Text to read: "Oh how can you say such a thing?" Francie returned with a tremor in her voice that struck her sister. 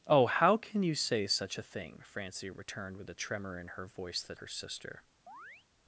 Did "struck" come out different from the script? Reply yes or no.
yes